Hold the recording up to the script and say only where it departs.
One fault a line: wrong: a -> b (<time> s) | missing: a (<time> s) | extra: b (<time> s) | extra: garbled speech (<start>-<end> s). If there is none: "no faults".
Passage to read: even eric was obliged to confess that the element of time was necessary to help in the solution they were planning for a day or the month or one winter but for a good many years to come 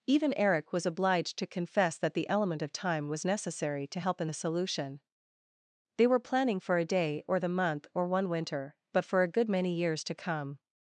no faults